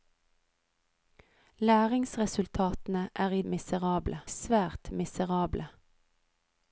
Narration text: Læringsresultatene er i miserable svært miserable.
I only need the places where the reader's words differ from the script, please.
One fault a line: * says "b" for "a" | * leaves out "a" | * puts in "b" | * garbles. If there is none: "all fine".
all fine